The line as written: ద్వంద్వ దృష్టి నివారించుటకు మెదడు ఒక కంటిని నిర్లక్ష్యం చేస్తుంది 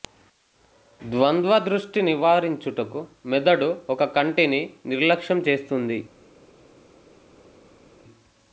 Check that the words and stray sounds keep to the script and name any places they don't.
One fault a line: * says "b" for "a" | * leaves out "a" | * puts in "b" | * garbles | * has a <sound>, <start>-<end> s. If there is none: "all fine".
all fine